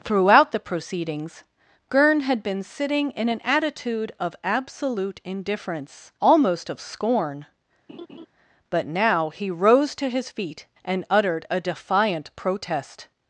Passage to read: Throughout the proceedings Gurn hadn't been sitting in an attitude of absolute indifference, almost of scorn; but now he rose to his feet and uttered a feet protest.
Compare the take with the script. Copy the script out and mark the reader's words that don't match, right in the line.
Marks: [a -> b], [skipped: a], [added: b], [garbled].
Throughout the proceedings Gurn [hadn't -> had] been sitting in an attitude of absolute indifference, almost of scorn; but now he rose to his feet and uttered a [feet -> defiant] protest.